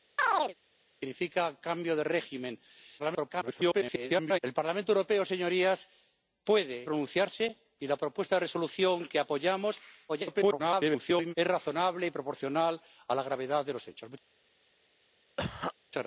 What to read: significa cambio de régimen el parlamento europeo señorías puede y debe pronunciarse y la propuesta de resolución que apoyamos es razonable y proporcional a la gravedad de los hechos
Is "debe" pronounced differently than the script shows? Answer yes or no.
yes